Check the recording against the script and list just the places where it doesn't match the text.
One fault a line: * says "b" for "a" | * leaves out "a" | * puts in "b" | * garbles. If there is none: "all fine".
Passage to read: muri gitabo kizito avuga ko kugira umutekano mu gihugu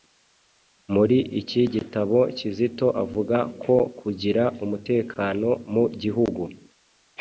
* puts in "iki"